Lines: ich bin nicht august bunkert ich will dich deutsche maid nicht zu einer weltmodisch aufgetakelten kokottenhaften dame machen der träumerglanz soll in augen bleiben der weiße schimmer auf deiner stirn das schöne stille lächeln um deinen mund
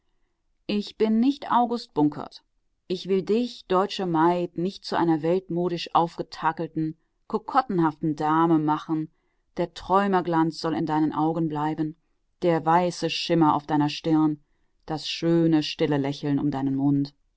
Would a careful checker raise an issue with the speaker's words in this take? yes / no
yes